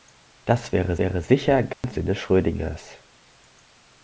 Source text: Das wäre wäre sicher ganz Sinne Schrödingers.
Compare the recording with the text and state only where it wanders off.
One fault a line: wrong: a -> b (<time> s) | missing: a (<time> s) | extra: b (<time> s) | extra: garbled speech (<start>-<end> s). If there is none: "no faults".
no faults